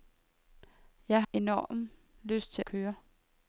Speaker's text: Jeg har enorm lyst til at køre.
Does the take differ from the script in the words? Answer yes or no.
yes